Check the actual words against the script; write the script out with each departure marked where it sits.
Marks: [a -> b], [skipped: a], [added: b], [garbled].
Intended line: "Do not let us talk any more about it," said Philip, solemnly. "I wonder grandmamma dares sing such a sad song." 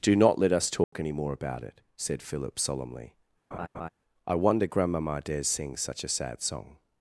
"Do not let us talk any more about it," said Philip, solemnly. "I wonder grandmamma dares sing such a sad song."